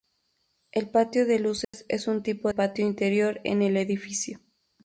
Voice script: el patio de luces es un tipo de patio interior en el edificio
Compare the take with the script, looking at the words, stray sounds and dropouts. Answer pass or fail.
fail